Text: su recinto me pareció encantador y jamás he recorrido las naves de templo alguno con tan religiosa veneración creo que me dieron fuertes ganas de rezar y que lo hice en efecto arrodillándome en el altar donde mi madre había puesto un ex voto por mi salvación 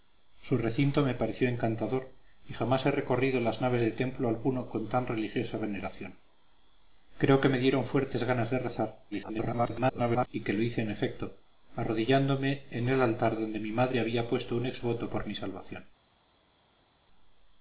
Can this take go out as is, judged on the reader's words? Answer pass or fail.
fail